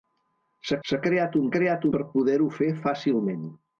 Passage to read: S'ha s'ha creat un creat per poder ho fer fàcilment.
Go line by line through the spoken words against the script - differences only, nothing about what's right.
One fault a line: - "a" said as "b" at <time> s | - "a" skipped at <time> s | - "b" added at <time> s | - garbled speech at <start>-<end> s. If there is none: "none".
none